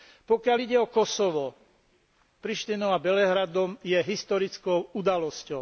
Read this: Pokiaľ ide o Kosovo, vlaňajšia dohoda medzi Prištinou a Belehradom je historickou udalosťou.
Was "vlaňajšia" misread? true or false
true